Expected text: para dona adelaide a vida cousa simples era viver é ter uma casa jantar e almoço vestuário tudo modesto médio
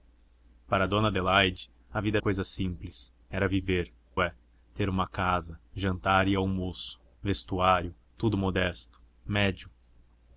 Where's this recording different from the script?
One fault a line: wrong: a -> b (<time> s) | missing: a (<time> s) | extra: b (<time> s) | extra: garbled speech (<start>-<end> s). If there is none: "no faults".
no faults